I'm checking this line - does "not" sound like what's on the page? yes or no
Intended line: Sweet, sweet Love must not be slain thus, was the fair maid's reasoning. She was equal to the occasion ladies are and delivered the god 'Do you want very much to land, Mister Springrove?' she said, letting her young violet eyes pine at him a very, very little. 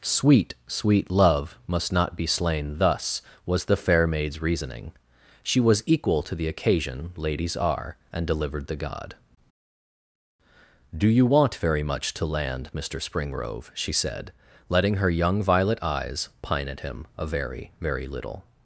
yes